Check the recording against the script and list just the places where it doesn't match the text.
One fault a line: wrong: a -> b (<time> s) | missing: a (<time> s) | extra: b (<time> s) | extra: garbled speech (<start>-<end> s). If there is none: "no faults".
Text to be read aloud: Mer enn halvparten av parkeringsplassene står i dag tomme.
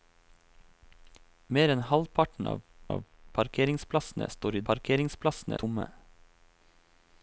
extra: av (3.0 s)
wrong: dag -> parkeringsplassene (4.7 s)